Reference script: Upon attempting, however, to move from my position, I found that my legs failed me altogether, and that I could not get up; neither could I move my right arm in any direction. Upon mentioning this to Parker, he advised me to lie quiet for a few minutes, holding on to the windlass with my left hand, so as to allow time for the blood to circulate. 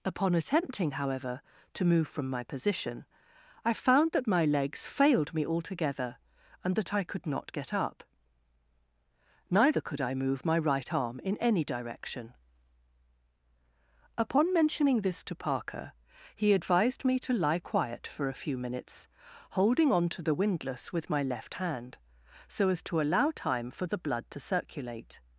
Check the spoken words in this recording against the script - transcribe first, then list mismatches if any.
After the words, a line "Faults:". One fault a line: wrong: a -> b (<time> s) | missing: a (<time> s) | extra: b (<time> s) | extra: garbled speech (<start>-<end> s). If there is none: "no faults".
Upon attempting, however, to move from my position, I found that my legs failed me altogether, and that I could not get up; neither could I move my right arm in any direction. Upon mentioning this to Parker, he advised me to lie quiet for a few minutes, holding on to the windlass with my left hand, so as to allow time for the blood to circulate.
Faults:
no faults